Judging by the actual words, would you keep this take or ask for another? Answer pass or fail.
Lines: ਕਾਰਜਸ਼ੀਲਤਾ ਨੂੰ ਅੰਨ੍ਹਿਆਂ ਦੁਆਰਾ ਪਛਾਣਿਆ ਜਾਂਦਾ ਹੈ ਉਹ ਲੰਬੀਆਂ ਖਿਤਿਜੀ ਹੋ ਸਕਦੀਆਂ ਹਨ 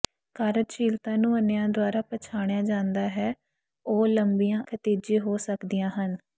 pass